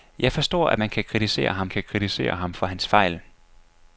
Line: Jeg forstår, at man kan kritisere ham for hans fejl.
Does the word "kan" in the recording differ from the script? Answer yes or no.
no